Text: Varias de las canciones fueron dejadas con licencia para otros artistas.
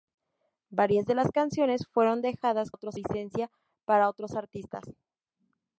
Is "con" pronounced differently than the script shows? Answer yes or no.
yes